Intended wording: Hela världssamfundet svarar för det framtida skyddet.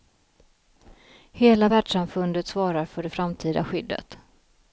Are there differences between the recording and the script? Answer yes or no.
no